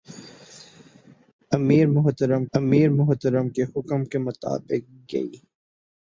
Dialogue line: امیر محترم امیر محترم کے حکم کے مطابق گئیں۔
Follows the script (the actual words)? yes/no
yes